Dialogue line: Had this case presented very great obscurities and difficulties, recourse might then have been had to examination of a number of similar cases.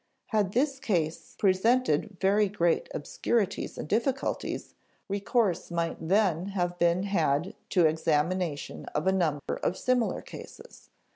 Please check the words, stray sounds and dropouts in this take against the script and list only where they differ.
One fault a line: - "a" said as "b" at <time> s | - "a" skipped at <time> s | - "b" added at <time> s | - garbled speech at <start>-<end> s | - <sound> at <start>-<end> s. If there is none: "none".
- dropout at 9.4-9.5 s